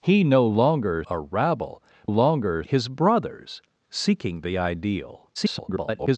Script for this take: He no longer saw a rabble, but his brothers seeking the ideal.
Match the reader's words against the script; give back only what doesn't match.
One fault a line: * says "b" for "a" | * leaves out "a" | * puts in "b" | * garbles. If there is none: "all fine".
* leaves out "saw"
* says "longer" for "but"
* garbles